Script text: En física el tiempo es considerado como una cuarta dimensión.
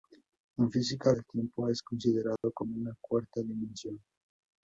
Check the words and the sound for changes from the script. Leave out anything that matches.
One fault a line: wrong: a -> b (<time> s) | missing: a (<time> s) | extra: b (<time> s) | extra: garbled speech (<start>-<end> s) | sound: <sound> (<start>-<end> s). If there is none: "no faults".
sound: dropout (2.4-2.4 s)